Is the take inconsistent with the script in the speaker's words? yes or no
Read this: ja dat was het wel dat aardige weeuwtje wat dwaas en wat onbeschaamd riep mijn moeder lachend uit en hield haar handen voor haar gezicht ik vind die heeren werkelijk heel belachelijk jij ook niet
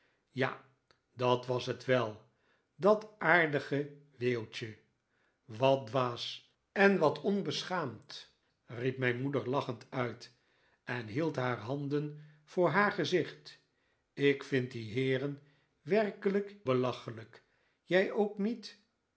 yes